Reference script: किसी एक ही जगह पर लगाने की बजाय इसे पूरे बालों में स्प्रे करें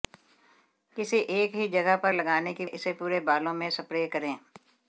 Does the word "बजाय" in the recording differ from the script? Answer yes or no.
yes